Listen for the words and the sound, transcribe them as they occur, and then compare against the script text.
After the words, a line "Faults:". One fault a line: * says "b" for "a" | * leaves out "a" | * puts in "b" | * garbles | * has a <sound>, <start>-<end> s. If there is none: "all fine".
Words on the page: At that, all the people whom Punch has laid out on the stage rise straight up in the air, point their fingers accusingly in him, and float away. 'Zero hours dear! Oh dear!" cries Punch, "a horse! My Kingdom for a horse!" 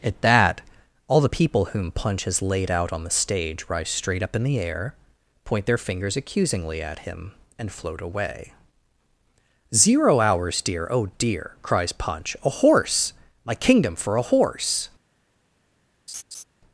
At that, all the people whom Punch has laid out on the stage rise straight up in the air, point their fingers accusingly at him, and float away. 'Zero hours dear! Oh dear!" cries Punch, "a horse! My Kingdom for a horse!"
Faults:
* says "at" for "in"
* has a laugh, 16.1-16.4 s